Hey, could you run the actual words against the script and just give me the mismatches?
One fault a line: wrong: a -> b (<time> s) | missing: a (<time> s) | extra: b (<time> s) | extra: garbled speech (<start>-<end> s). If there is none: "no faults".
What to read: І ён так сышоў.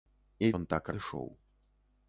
no faults